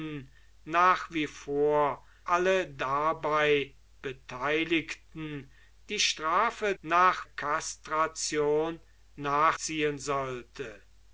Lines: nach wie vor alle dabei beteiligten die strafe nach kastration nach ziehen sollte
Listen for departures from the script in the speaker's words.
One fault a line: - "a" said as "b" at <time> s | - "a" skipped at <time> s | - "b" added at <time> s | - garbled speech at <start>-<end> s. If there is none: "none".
none